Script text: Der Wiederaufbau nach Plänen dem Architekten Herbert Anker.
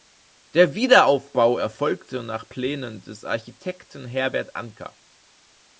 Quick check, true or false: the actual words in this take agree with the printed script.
false